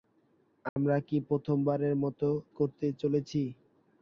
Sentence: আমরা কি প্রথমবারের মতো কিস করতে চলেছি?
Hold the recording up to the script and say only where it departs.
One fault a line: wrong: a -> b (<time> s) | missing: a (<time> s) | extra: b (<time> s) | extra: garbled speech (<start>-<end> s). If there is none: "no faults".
missing: কিস (2.3 s)